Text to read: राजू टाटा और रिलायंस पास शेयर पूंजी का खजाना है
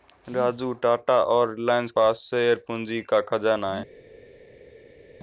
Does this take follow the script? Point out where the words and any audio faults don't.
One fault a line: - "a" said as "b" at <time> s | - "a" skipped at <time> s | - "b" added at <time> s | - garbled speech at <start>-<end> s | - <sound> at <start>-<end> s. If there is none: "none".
none